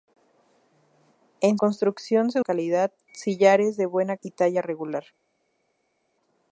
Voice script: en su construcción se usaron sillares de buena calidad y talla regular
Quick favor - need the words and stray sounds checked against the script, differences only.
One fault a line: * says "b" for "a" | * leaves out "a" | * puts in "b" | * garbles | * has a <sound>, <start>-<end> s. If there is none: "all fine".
* leaves out "su"
* says "calidad" for "usaron"
* leaves out "calidad"